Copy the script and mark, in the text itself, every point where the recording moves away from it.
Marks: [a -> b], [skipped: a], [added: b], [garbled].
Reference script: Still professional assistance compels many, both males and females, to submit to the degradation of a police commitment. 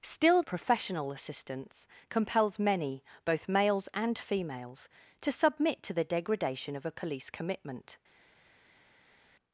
Still professional assistance compels many, both males and females, to submit to the degradation of a police commitment.